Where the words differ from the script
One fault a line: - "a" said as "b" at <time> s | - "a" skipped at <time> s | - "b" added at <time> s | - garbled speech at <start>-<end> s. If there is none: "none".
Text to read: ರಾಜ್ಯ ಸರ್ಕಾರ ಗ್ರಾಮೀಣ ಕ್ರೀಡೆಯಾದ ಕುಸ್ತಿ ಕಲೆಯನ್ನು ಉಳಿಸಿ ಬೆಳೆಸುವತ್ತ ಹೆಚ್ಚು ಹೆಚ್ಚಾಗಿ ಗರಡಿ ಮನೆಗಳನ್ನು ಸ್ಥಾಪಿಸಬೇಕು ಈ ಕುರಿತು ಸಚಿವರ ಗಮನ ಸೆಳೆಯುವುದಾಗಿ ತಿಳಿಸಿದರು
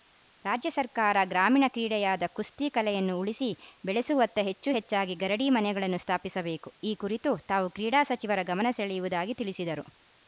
- "ತಾವು ಕ್ರೀಡಾ" added at 7.5 s